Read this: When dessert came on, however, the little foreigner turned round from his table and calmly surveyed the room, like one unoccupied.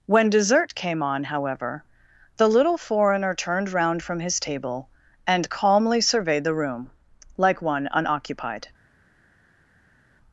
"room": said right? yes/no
yes